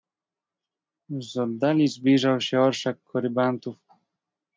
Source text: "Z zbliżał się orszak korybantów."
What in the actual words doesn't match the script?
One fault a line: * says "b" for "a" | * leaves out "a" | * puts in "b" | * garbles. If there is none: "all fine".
* puts in "oddali"